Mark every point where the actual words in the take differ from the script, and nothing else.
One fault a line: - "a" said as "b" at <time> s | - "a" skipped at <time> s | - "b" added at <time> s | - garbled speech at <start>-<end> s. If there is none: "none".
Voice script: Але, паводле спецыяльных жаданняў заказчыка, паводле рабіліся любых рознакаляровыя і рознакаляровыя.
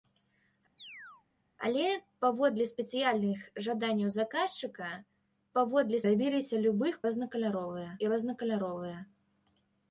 none